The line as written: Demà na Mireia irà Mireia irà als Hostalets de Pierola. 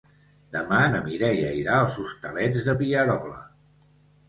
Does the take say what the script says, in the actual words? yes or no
no